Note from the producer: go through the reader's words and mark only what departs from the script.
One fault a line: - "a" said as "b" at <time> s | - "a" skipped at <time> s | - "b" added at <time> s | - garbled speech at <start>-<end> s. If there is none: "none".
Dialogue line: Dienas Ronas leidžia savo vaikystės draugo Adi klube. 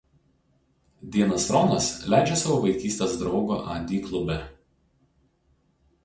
none